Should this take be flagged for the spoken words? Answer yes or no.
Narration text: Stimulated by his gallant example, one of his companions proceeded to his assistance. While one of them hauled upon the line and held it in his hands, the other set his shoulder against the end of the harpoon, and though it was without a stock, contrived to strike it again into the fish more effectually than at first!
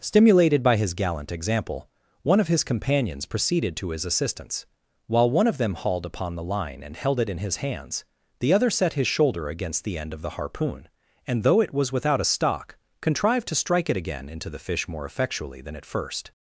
no